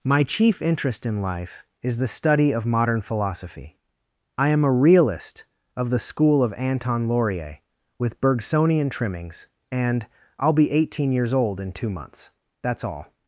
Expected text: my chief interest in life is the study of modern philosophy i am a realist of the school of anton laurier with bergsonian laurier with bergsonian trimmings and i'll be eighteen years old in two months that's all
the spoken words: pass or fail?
fail